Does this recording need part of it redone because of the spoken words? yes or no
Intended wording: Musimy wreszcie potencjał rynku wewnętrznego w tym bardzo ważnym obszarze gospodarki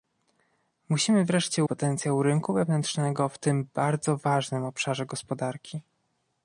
no